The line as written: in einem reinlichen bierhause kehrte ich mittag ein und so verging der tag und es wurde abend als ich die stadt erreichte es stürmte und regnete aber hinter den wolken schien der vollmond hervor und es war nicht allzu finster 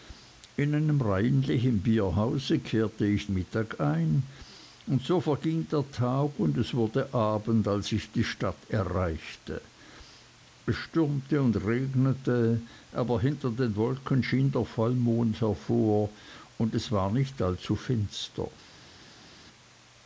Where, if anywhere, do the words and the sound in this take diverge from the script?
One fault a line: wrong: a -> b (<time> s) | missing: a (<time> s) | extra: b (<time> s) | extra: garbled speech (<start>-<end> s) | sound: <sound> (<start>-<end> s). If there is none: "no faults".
no faults